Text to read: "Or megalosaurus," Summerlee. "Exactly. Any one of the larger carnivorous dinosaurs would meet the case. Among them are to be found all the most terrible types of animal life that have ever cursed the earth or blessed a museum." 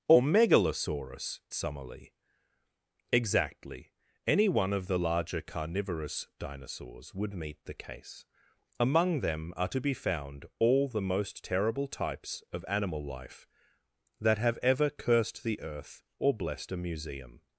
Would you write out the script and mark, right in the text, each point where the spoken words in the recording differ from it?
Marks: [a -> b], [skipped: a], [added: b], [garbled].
"Or megalosaurus," Summerlee. "Exactly. Any one of the larger carnivorous dinosaurs would meet the case. Among them are to be found all the most terrible types of animal life that have ever cursed the earth or blessed a museum."